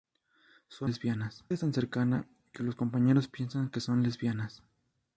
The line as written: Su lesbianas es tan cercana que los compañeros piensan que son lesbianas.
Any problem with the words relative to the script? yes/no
no